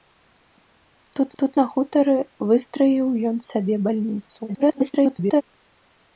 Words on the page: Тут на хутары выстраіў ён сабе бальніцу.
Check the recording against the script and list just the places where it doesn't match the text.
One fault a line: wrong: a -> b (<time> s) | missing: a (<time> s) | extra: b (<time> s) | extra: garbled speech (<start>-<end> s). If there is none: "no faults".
extra: тут (1.4 s)
extra: garbled speech (4.5-5.4 s)